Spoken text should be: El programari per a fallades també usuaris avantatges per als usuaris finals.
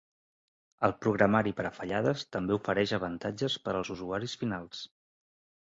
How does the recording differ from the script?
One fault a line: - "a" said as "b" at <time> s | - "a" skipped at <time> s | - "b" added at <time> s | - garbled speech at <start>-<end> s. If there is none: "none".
- "usuaris" said as "ofereix" at 2.6 s